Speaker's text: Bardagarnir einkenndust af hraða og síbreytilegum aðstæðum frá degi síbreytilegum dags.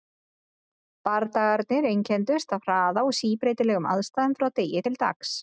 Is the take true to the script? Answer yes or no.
no